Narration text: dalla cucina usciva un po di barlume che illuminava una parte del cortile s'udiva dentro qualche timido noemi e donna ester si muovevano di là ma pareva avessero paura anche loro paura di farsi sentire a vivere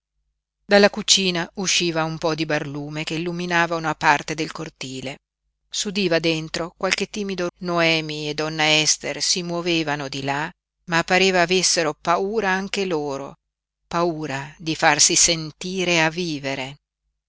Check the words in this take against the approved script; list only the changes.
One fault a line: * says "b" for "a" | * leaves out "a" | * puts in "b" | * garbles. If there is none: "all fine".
all fine